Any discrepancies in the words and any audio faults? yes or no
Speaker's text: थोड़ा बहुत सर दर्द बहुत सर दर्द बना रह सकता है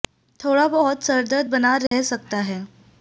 yes